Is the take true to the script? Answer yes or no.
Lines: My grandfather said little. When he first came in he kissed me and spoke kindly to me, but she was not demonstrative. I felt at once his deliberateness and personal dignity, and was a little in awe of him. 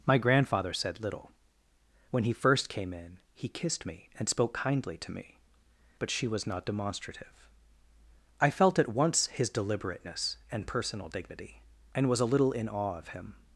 yes